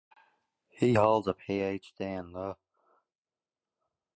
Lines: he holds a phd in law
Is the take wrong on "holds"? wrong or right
right